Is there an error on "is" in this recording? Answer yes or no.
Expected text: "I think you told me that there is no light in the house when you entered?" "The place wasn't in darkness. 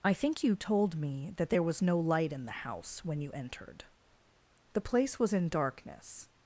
yes